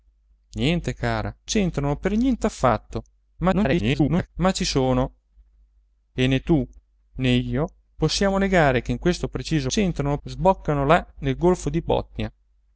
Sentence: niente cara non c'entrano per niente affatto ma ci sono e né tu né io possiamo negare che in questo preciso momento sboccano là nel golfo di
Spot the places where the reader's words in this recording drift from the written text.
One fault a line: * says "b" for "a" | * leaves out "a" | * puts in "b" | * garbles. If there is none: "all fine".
* leaves out "non"
* garbles
* says "c'entrano" for "momento"